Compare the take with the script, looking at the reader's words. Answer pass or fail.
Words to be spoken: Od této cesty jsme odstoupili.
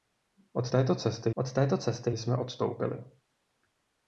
fail